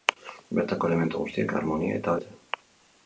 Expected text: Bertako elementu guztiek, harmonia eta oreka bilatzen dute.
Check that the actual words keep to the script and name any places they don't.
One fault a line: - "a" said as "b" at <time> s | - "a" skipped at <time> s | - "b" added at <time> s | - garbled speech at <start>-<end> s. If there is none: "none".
- "oreka bilatzen" skipped at 2.2 s